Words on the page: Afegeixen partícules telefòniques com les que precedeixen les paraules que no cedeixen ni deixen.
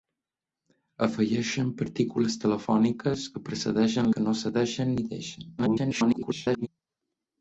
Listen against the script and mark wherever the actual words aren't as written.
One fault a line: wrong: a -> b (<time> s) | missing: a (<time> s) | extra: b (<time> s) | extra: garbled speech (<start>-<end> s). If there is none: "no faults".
missing: com les (3.3 s)
missing: les paraules (4.1 s)
extra: garbled speech (5.6-6.7 s)